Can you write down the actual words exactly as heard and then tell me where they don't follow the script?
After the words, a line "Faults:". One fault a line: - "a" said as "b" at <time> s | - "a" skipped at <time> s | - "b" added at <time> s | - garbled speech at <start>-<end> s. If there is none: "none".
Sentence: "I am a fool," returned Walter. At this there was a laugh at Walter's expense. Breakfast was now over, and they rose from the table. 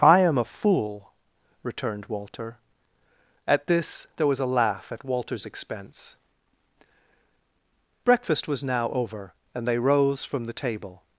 "I am a fool," returned Walter. At this there was a laugh at Walter's expense. Breakfast was now over, and they rose from the table.
Faults:
none